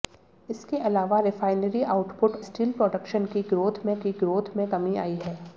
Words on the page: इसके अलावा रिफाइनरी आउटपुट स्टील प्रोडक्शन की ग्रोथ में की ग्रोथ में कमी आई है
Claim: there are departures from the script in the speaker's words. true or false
false